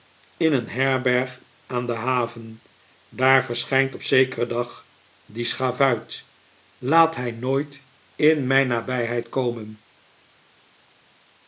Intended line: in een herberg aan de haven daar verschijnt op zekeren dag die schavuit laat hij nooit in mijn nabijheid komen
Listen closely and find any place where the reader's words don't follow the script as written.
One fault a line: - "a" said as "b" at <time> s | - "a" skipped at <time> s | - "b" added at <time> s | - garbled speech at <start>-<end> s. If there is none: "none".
none